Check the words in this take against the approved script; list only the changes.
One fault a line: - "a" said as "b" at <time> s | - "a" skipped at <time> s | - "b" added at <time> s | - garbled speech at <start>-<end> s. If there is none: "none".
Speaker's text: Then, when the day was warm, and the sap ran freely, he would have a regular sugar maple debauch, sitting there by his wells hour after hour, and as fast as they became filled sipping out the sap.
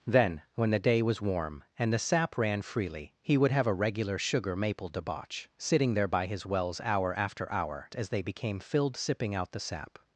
- "and as fast" skipped at 7.9 s